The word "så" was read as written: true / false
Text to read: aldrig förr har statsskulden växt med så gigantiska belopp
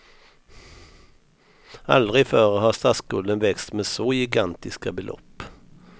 true